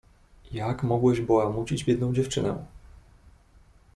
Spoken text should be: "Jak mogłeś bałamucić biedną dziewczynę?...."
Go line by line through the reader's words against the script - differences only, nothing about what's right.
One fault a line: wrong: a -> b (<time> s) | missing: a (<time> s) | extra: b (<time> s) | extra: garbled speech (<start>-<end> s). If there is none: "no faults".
no faults